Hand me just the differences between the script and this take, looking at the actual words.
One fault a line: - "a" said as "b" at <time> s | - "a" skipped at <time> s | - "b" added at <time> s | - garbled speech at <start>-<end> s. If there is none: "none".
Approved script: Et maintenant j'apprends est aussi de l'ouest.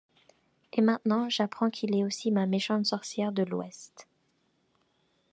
- "qu'il" added at 1.7 s
- "ma méchante sorcière" added at 2.3 s